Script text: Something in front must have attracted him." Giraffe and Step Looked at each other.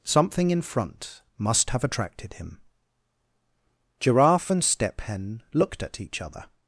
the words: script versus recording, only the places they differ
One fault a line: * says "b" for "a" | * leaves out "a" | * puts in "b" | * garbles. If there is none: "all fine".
* puts in "Hen"